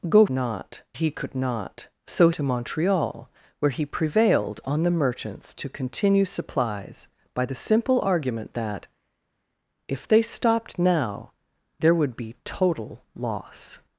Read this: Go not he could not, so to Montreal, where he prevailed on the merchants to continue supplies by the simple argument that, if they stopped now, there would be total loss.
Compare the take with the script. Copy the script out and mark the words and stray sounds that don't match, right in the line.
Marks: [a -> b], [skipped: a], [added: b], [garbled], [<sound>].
Go not he could not, so to Montreal, where he prevailed on the merchants to continue supplies by the simple argument that, if they stopped now, there would be total loss.